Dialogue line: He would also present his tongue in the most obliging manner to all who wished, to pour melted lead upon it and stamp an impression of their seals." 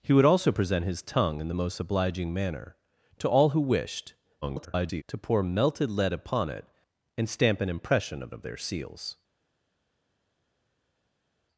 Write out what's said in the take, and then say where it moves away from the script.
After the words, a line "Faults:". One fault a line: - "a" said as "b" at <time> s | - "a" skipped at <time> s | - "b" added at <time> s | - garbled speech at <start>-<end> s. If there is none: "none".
He would also present his tongue in the most obliging manner to all who wished, [garbled] to pour melted lead upon it and stamp an impression of of their seals."
Faults:
- garbled speech at 4.4-5.0 s
- "of" added at 8.3 s